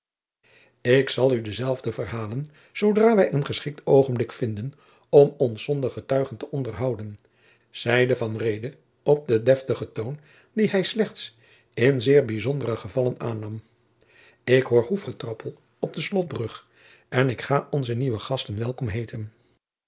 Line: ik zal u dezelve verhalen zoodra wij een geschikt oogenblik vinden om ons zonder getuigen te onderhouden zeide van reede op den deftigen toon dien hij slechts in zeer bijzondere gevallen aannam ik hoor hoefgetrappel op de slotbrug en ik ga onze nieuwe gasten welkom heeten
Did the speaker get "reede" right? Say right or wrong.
right